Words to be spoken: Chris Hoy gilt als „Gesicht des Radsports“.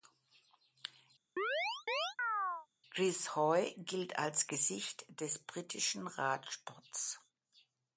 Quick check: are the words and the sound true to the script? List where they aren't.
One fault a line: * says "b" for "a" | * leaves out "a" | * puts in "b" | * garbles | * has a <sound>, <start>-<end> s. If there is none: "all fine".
* has a chirp, 1.4-2.7 s
* puts in "britischen"